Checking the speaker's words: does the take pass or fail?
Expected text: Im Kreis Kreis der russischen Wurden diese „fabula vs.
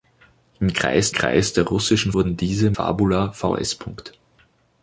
pass